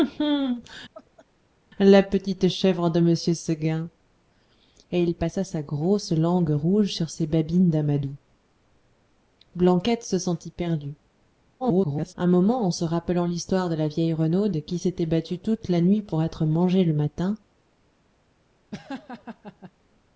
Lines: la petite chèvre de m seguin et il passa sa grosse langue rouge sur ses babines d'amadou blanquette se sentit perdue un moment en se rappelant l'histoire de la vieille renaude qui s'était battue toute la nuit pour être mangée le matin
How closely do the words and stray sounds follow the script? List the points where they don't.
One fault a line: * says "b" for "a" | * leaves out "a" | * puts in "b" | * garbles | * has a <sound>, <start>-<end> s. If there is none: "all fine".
* has a laugh, 0.9-1.3 s
* garbles
* has a laugh, 18.7-19.7 s